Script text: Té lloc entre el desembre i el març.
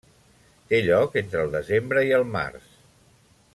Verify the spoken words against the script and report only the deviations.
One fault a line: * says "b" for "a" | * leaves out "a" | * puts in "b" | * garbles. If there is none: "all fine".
all fine